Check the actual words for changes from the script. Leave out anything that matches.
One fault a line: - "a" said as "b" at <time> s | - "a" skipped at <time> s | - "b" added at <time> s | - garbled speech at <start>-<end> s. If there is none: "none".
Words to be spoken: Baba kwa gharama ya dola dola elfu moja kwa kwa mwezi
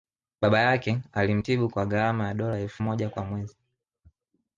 - "yake alimtibu" added at 0.6 s
- "dola" skipped at 2.6 s
- "kwa" skipped at 3.2 s